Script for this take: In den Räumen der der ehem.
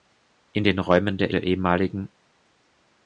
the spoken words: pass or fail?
pass